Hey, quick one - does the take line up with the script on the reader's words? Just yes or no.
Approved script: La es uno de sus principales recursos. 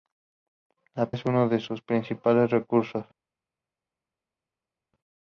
yes